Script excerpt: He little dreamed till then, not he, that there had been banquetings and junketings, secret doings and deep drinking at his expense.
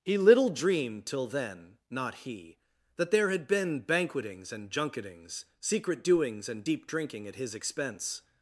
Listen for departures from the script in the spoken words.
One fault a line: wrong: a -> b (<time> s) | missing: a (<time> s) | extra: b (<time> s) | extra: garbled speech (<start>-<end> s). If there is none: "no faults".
no faults